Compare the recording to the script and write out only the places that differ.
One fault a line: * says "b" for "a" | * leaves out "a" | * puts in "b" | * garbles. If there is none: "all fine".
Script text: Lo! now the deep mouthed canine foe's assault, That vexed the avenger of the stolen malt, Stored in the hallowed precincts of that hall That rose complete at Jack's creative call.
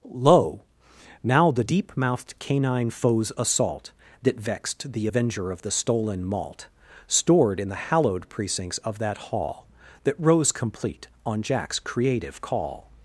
* says "on" for "at"